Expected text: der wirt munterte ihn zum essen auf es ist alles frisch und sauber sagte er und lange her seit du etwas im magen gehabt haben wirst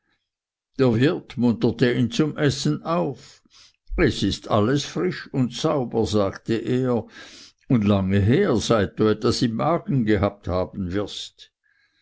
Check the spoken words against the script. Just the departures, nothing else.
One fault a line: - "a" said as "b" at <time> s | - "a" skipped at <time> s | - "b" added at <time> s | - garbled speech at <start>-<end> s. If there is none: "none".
none